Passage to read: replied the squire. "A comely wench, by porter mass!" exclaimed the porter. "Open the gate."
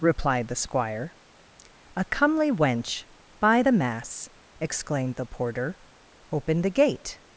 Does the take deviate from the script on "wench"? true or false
false